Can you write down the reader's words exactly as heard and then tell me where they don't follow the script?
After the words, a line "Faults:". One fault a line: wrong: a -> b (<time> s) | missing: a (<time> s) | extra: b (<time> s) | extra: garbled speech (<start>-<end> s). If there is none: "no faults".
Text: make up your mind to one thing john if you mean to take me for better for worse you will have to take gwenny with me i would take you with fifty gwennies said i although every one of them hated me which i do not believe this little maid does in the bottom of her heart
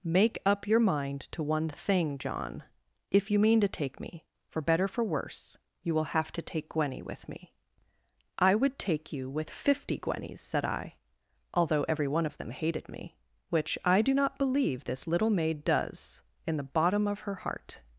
make up your mind to one thing john if you mean to take me for better for worse you will have to take gwenny with me i would take you with fifty gwennies said i although every one of them hated me which i do not believe this little maid does in the bottom of her heart
Faults:
no faults